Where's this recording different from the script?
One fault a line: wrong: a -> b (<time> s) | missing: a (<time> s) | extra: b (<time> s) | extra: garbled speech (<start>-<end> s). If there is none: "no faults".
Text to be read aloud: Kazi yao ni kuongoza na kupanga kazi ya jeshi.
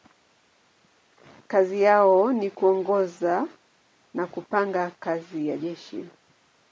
no faults